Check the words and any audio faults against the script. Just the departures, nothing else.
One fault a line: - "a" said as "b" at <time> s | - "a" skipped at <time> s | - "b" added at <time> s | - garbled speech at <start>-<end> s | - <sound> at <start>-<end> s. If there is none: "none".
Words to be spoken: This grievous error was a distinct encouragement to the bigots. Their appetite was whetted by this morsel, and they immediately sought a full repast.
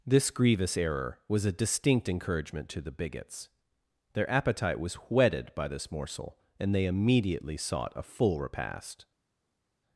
none